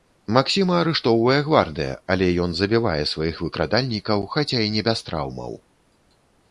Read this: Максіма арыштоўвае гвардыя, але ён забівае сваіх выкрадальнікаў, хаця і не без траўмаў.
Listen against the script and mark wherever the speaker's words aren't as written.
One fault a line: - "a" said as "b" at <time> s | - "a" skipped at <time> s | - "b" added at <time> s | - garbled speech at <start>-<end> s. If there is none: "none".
none